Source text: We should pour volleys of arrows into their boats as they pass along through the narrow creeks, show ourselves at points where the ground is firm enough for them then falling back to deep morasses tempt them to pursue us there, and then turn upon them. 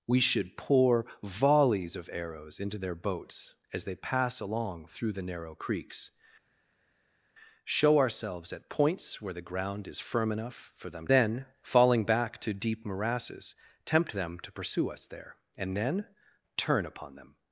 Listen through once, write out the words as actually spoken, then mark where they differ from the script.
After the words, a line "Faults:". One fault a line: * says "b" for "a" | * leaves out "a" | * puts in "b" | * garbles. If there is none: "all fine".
We should pour volleys of arrows into their boats as they pass along through the narrow creeks, show ourselves at points where the ground is firm enough for them then falling back to deep morasses tempt them to pursue us there, and then turn upon them.
Faults:
all fine